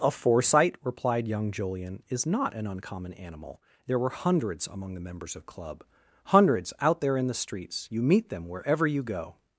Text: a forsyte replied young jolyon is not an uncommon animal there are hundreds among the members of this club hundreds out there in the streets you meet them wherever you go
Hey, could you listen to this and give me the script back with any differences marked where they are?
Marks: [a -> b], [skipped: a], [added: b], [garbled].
a forsyte replied young jolyon is not an uncommon animal there [are -> were] hundreds among the members of [skipped: this] club hundreds out there in the streets you meet them wherever you go